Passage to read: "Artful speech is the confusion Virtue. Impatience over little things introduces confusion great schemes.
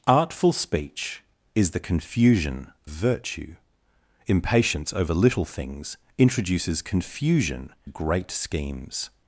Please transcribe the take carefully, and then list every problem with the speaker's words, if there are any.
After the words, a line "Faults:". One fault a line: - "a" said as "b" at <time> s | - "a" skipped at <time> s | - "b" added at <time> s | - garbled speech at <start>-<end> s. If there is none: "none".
"Artful speech is the confusion Virtue. Impatience over little things introduces confusion great schemes.
Faults:
none